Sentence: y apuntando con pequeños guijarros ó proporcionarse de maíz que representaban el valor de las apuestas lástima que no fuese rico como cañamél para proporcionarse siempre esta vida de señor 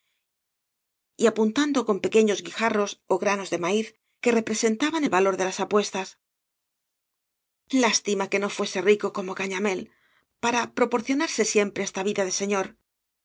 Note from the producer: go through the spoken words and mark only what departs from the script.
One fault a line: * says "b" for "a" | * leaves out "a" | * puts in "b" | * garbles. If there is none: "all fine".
* says "granos" for "proporcionarse"